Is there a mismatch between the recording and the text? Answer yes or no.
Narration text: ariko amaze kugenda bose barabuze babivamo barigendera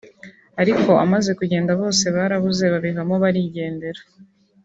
no